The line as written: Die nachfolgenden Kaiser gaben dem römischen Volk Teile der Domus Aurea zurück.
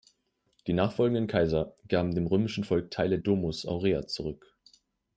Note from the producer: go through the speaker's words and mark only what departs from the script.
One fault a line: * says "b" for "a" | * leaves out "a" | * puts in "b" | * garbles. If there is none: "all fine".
* leaves out "der"